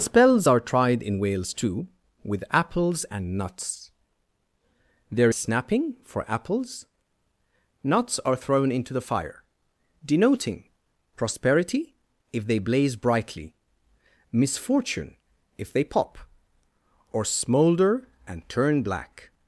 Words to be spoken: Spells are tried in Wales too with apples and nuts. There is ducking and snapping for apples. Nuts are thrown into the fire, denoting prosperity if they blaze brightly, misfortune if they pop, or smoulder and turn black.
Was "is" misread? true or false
true